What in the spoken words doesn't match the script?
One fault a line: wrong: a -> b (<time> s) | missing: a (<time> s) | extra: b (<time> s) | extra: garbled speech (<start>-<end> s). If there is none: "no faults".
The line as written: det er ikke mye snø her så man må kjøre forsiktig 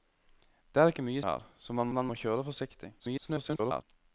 missing: snø (1.2 s)
extra: man (1.9 s)
extra: garbled speech (3.0-3.8 s)